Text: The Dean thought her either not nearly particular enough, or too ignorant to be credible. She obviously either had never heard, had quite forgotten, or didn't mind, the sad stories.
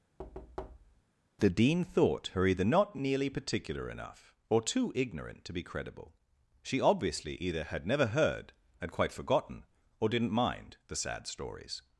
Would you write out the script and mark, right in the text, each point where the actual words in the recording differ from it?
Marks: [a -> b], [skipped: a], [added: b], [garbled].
The Dean thought her either not nearly particular enough, or too ignorant to be credible. She obviously either had never heard, had quite forgotten, or didn't mind, the sad stories.